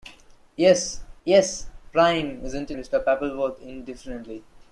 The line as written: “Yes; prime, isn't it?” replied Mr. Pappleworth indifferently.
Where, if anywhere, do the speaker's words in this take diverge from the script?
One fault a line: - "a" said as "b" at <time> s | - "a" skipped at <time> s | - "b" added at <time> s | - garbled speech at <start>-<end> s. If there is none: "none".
- "yes" added at 1.2 s
- "it replied" skipped at 2.7 s